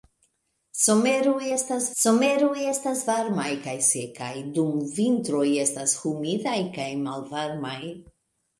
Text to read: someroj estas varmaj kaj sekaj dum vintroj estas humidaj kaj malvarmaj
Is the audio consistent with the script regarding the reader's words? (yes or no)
no